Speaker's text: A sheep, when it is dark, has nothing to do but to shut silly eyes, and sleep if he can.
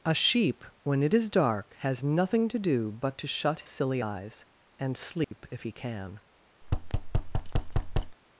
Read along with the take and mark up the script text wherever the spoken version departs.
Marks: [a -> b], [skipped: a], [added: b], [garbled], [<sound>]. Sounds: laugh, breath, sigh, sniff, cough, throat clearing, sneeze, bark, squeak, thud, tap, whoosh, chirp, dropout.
A sheep, when it is dark, has nothing to do but to shut silly eyes, and sleep [dropout] if he can. [thud]